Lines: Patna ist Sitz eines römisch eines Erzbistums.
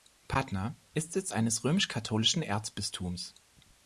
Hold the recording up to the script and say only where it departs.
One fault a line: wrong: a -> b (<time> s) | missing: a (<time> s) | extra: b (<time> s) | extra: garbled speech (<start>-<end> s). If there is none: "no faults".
wrong: eines -> katholischen (1.9 s)